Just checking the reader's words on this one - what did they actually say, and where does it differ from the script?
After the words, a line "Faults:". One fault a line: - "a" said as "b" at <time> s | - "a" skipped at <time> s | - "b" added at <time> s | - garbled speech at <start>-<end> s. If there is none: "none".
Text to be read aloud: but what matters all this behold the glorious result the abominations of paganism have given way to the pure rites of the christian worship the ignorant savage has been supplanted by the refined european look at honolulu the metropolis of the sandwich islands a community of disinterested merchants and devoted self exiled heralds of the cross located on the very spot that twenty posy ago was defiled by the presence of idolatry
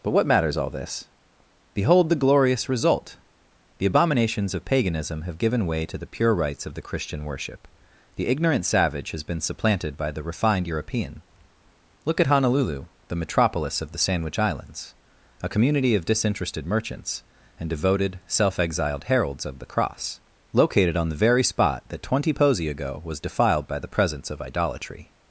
but what matters all this behold the glorious result the abominations of paganism have given way to the pure rites of the christian worship the ignorant savage has been supplanted by the refined european look at honolulu the metropolis of the sandwich islands a community of disinterested merchants and devoted self exiled heralds of the cross located on the very spot that twenty posy ago was defiled by the presence of idolatry
Faults:
none